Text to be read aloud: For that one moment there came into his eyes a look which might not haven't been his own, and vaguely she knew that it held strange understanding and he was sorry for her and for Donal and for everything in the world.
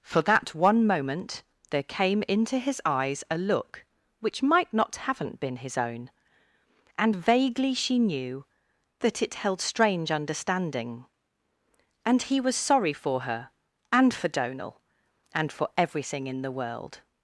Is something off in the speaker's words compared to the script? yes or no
no